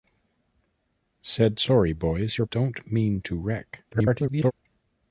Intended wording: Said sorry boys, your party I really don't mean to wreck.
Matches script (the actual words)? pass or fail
fail